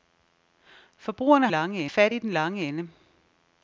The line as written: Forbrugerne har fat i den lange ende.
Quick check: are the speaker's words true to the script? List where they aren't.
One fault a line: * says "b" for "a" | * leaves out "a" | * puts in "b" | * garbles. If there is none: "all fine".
* says "lange" for "har"